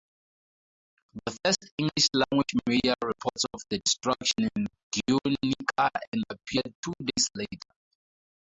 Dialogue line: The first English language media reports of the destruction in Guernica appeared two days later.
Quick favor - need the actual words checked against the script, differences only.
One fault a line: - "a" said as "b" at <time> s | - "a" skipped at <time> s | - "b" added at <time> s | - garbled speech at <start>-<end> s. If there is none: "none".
none